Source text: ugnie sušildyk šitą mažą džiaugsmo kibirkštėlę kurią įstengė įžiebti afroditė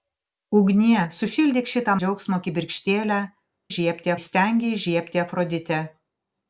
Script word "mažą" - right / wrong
wrong